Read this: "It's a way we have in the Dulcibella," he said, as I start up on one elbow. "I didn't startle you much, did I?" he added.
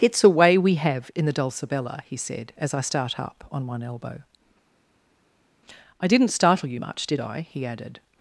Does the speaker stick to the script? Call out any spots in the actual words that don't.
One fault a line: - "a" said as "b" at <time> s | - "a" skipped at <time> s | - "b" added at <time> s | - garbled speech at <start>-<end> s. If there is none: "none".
none